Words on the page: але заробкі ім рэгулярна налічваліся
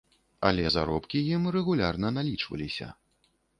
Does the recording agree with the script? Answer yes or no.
yes